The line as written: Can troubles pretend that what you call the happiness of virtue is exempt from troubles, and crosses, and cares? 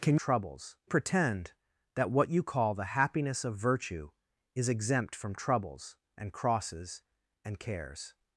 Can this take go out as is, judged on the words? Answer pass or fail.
pass